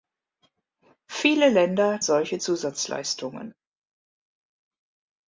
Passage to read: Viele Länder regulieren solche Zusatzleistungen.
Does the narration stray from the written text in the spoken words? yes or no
yes